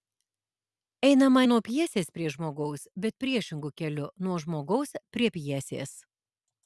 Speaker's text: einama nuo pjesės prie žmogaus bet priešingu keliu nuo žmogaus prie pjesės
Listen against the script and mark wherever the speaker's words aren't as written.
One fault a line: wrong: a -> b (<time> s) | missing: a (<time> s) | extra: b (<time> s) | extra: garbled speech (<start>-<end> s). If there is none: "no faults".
no faults